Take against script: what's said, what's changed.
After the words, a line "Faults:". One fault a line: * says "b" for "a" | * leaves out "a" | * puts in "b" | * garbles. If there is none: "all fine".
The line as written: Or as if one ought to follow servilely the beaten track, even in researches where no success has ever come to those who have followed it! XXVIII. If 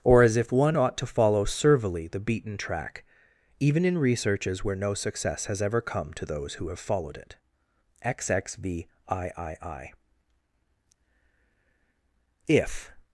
Or as if one ought to follow servilely the beaten track, even in researches where no success has ever come to those who have followed it! XXVIII. If
Faults:
all fine